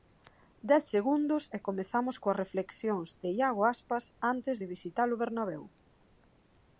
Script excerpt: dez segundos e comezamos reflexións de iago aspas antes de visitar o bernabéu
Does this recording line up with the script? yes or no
no